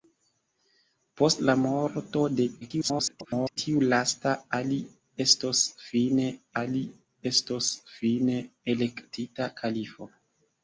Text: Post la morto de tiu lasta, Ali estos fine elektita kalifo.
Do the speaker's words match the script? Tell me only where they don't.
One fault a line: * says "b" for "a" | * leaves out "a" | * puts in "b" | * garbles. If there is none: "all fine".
* garbles
* puts in "Ali estos fine"